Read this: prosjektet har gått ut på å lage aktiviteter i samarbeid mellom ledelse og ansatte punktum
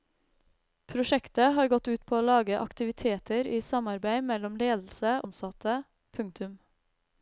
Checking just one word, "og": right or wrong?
wrong